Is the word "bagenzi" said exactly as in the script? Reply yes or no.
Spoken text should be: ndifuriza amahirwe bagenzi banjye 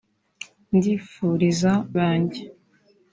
no